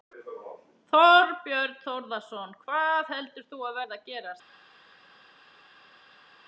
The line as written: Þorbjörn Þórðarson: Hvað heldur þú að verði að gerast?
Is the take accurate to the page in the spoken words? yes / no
yes